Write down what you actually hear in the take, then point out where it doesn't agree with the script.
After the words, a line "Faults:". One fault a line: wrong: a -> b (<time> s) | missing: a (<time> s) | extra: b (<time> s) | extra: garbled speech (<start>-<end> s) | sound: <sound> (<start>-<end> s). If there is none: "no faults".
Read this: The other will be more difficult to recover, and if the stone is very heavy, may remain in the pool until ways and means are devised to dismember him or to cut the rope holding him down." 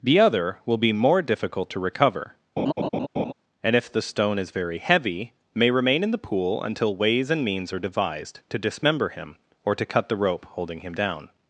The other will be more difficult to recover, and if the stone is very heavy, may remain in the pool until ways and means are devised to dismember him or to cut the rope holding him down."
Faults:
sound: laugh (2.6-3.3 s)